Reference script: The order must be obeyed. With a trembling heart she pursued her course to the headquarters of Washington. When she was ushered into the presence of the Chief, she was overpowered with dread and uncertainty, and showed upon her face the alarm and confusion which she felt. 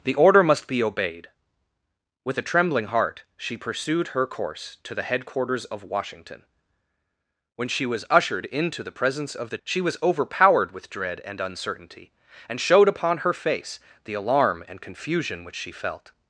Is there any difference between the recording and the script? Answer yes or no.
yes